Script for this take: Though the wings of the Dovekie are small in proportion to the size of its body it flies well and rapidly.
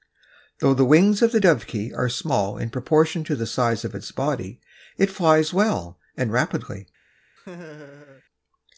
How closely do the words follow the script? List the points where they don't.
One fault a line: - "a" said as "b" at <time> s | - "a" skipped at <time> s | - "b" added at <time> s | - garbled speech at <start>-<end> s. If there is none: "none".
none